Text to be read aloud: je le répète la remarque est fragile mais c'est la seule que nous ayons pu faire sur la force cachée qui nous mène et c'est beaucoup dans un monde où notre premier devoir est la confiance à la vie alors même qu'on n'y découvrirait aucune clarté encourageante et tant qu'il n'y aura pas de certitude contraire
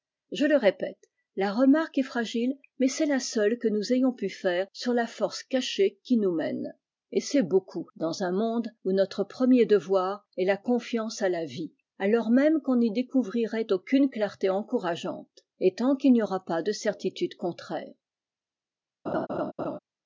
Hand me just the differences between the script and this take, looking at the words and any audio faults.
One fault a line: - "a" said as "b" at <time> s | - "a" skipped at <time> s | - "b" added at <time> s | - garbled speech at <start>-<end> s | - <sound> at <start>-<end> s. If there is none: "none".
- laugh at 19.1-19.8 s